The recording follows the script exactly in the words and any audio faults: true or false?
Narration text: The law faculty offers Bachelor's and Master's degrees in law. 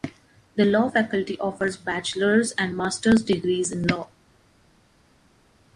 true